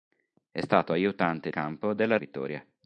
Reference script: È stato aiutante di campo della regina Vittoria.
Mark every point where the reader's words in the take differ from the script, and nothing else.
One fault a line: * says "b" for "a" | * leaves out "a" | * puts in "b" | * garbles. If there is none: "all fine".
* leaves out "di"
* leaves out "regina"